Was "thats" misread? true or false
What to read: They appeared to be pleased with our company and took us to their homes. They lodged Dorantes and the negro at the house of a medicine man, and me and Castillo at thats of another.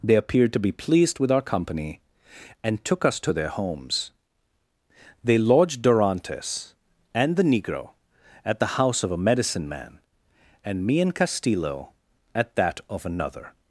true